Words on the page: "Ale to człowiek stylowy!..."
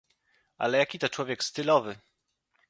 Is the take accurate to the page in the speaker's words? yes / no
no